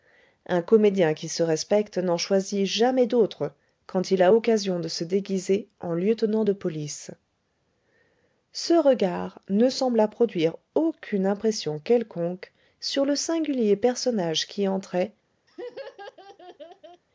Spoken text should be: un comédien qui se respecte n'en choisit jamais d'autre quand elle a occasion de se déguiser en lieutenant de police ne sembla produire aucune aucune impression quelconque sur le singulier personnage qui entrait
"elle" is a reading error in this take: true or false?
true